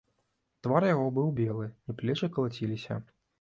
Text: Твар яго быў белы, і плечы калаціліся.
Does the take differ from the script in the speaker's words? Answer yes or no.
no